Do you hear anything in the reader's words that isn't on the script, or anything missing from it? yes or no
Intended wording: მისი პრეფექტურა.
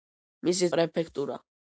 no